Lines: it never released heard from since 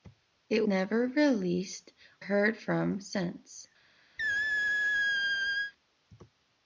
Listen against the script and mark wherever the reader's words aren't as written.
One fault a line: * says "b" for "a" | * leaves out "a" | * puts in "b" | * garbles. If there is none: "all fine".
all fine